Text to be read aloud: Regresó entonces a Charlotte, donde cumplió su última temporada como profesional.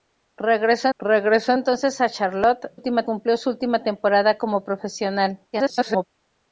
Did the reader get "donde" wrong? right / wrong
wrong